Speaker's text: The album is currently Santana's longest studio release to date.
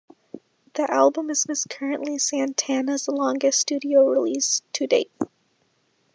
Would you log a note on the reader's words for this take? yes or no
yes